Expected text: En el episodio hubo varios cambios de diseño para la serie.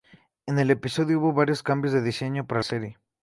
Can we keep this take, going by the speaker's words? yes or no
no